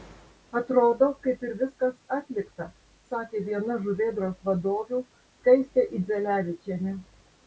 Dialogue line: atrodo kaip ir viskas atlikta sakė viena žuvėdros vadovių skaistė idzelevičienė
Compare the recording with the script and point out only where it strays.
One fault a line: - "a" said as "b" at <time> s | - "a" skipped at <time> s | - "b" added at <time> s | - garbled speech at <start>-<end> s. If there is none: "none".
none